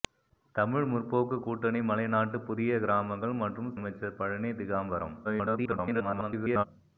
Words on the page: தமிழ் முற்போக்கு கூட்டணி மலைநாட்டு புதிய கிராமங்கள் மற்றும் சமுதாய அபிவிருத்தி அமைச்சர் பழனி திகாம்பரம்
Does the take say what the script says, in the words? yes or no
no